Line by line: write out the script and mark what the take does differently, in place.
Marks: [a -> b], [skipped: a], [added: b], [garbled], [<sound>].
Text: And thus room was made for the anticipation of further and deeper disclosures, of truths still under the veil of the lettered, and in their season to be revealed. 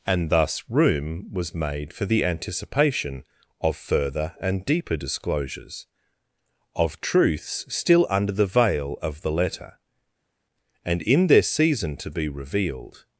And thus room was made for the anticipation of further and deeper disclosures, of truths still under the veil of the [lettered, -> letter] and in their season to be revealed.